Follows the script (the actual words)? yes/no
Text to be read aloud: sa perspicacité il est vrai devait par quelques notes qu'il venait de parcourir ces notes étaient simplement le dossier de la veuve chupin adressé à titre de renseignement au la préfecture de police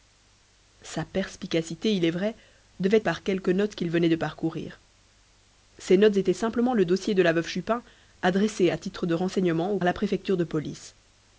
yes